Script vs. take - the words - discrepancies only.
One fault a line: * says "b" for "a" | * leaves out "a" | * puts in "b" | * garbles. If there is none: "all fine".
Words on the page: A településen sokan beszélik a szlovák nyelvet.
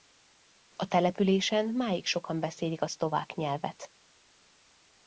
* puts in "máig"